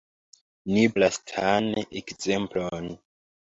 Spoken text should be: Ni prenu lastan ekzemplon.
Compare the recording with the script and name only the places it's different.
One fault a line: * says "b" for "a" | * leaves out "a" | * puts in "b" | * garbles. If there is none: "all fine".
* leaves out "prenu"